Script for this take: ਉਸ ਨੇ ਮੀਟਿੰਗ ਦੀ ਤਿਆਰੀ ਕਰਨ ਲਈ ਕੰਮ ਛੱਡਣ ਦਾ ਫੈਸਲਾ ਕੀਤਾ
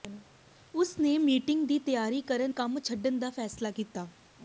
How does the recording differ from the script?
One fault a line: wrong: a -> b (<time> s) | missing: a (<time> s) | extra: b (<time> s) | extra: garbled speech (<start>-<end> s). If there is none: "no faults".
missing: ਲਈ (2.5 s)